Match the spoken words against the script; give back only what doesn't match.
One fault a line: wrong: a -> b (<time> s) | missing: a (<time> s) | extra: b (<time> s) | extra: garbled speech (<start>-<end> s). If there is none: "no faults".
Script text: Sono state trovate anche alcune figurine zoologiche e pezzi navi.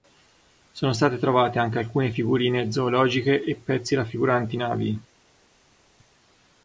extra: raffiguranti (4.0 s)